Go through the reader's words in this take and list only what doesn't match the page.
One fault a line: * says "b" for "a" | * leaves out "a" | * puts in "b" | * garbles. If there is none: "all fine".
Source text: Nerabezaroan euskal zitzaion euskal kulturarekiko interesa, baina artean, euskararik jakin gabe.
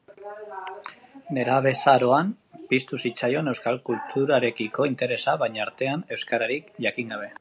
* says "piztu" for "euskal"